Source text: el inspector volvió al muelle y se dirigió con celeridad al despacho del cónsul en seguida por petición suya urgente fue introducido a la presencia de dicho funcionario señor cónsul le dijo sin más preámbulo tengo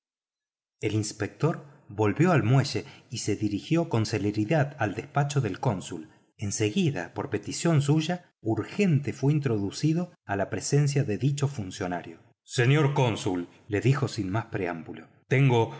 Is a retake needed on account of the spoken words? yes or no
no